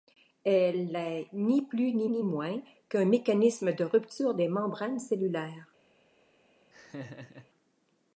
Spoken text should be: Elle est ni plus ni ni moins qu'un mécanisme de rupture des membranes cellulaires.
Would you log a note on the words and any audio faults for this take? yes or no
yes